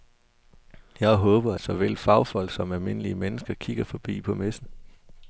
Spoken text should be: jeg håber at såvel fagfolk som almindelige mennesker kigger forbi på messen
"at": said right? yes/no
no